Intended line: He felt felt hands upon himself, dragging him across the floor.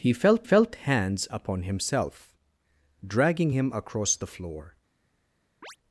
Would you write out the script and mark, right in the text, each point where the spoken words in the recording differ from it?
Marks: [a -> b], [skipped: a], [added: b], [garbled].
He felt felt hands upon himself, dragging him across the floor.